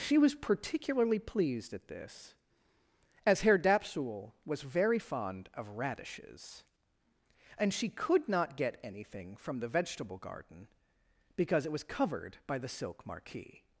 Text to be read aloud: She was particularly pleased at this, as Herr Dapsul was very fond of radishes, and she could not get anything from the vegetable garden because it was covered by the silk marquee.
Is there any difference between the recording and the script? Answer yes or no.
no